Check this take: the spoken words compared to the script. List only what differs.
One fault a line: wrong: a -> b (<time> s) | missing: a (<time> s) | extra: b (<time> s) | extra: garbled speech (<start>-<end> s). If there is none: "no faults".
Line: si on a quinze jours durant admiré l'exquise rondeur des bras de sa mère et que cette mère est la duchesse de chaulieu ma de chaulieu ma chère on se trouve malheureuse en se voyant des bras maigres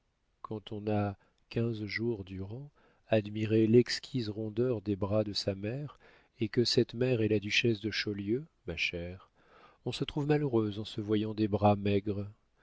wrong: si -> quand (0.4 s)
missing: de chaulieu ma (8.8 s)